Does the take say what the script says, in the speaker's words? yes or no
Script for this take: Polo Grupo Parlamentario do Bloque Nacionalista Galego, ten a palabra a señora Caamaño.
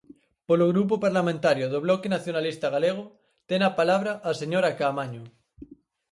yes